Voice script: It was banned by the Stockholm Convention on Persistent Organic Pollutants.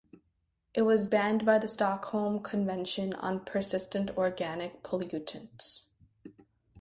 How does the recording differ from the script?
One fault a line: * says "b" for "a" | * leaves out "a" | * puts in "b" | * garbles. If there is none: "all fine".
all fine